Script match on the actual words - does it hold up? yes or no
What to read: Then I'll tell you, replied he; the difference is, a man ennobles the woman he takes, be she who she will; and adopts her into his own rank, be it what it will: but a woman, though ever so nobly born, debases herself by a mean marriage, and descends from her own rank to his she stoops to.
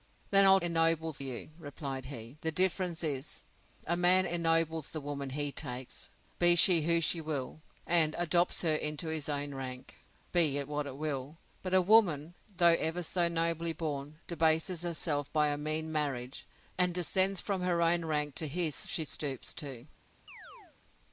no